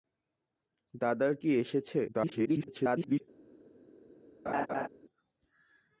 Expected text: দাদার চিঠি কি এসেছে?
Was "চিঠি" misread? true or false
true